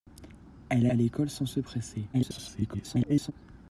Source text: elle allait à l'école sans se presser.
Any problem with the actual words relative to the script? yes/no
yes